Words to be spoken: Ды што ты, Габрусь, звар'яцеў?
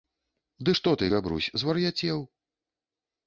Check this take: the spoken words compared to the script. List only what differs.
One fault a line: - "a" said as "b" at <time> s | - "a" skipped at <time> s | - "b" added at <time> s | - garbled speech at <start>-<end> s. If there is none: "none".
none